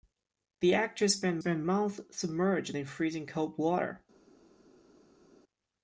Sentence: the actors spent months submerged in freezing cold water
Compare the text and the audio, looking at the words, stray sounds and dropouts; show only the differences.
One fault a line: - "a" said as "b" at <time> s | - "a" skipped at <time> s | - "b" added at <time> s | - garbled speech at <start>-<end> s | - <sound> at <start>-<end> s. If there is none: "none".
- "spent" added at 1.4 s